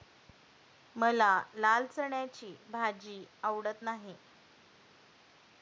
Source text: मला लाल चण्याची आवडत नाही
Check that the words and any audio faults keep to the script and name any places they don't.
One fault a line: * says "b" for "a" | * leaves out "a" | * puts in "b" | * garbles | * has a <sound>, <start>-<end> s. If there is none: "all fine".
* puts in "भाजी"